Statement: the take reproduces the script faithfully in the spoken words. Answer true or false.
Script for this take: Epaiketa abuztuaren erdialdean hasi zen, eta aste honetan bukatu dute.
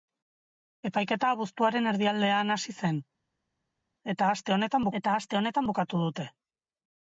false